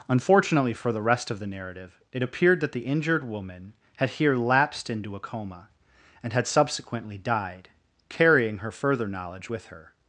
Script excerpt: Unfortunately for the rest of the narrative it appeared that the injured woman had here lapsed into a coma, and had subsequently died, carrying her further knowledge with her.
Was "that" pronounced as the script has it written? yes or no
yes